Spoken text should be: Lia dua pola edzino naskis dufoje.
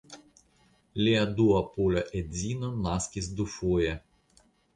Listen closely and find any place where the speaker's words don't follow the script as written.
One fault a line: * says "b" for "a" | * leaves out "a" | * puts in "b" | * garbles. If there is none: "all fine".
all fine